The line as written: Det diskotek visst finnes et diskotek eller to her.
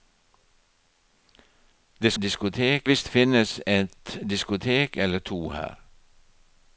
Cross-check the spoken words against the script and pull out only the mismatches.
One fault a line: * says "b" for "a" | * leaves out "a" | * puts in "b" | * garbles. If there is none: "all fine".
all fine